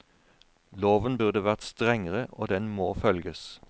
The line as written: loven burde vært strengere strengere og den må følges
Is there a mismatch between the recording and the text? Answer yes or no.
yes